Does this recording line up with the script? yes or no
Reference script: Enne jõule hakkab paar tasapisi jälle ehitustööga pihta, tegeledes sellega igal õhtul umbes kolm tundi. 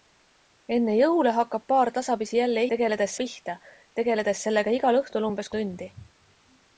no